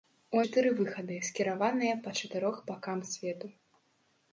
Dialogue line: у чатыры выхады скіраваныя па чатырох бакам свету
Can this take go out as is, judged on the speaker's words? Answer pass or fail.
pass